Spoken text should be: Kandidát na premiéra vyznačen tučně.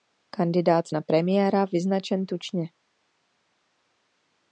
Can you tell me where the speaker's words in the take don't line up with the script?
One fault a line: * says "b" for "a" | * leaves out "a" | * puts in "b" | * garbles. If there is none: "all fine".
all fine